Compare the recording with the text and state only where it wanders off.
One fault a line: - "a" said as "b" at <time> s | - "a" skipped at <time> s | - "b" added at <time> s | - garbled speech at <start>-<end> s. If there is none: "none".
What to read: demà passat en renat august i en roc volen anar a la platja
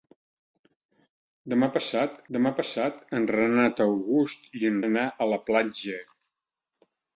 - "demà passat" added at 2.4 s
- "roc volen" skipped at 4.8 s